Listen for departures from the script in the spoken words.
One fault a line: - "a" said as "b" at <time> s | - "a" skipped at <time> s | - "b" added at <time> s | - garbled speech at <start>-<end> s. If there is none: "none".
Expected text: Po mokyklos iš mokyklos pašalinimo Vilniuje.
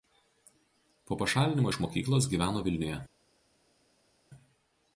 - "mokyklos" said as "pašalinimo" at 1.2 s
- "pašalinimo" said as "gyveno" at 2.3 s